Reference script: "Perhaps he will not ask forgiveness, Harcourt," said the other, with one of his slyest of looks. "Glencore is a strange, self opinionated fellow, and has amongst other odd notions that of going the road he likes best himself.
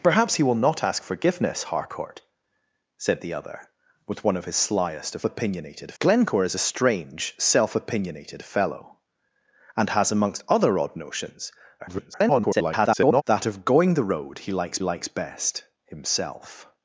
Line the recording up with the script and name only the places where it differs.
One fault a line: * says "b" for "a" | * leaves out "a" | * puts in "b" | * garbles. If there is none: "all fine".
* says "opinionated" for "looks"
* garbles
* puts in "likes"